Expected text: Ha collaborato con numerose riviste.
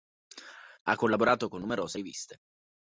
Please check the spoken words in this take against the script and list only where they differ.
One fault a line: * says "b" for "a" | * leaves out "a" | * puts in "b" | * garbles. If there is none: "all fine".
all fine